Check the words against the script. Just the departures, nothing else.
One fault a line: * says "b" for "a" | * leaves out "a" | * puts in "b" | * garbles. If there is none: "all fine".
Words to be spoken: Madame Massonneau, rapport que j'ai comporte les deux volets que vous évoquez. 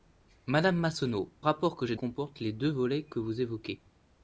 all fine